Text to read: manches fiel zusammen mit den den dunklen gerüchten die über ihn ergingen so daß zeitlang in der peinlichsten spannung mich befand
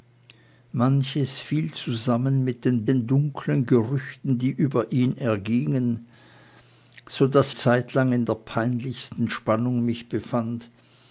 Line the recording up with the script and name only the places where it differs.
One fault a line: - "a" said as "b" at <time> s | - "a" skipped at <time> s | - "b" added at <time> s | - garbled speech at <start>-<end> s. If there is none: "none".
none